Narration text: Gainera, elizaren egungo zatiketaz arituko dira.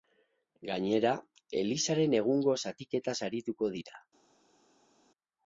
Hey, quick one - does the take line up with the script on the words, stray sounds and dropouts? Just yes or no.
yes